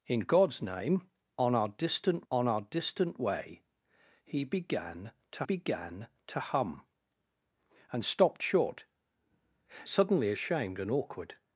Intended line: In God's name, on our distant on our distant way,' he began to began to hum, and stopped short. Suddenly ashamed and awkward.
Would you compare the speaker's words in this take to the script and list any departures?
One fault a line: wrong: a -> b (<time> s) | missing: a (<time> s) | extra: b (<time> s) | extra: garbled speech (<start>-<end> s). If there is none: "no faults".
no faults